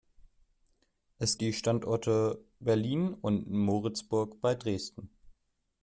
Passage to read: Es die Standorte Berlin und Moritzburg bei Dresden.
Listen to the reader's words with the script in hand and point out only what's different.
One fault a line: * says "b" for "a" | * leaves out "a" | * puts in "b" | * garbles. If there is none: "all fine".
all fine